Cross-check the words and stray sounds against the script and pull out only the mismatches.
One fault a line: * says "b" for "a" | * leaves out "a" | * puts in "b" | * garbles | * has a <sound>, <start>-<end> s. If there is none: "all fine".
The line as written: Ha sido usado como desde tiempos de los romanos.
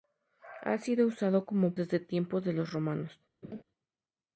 * has a laugh, 3.4-3.6 s